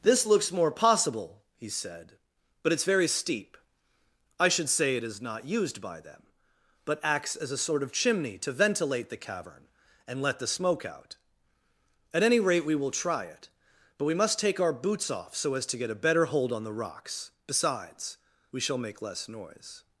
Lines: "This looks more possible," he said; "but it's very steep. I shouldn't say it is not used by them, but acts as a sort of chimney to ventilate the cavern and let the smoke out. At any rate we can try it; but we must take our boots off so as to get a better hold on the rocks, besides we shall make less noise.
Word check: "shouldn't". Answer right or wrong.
wrong